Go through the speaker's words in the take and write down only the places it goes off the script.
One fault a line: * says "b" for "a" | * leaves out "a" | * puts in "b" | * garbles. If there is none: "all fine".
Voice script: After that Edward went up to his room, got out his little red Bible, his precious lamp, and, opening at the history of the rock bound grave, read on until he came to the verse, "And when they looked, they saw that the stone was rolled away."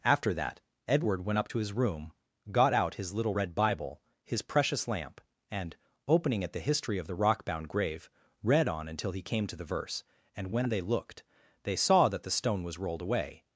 all fine